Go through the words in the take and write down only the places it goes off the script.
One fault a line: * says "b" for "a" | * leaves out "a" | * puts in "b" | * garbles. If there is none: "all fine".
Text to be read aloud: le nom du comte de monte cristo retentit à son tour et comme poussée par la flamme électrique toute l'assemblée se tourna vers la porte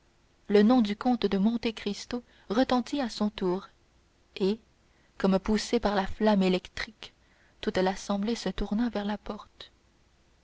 all fine